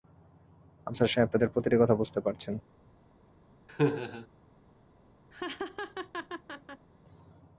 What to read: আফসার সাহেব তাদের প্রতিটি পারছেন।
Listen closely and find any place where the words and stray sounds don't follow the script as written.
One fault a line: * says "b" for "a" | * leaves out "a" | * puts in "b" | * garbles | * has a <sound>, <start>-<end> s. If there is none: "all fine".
* puts in "কথা বুঝতে"
* has a laugh, 3.7-4.3 s
* has a laugh, 5.3-6.9 s